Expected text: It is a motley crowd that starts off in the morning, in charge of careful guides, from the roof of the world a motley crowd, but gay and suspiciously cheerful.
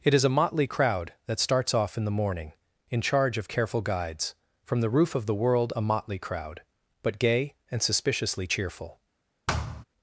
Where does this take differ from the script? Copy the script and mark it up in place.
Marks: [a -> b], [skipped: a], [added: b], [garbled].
It is a motley crowd that starts off in the morning, in charge of careful guides, from the roof of the world a motley crowd, but gay and suspiciously cheerful.